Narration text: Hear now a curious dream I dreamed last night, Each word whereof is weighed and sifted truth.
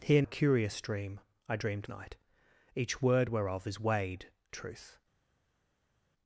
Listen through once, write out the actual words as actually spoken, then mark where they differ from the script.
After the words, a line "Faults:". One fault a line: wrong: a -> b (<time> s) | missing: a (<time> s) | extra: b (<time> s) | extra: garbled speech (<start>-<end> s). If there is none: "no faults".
Hear a curious dream I dreamed night, Each word whereof is weighed truth.
Faults:
missing: now (0.2 s)
missing: last (1.9 s)
missing: and sifted (4.3 s)